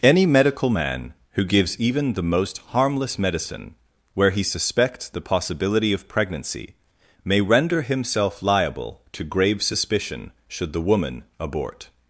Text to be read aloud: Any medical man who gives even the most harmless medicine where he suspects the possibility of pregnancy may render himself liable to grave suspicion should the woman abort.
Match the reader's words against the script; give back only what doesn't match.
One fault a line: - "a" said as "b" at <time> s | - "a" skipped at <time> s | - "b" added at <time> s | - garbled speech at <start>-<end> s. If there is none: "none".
none